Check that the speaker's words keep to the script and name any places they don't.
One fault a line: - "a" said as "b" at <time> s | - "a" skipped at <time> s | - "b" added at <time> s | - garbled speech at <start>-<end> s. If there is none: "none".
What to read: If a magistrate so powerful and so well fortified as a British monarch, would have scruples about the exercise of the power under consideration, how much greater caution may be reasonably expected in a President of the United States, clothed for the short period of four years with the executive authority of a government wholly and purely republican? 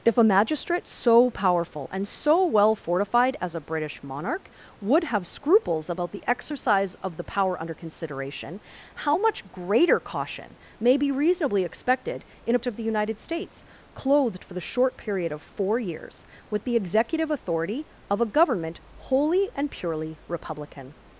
- "President" skipped at 12.7 s